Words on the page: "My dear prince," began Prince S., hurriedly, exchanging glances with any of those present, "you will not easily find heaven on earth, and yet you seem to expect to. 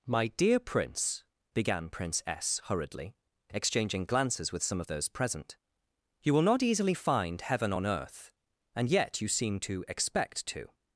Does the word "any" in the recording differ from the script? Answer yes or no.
yes